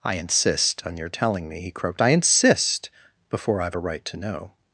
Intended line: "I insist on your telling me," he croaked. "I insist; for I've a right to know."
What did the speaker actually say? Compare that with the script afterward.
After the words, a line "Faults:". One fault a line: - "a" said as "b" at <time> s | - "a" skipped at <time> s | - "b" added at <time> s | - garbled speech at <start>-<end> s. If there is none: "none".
"I insist on your telling me," he croaked. "I insist; before I've a right to know."
Faults:
- "for" said as "before" at 3.3 s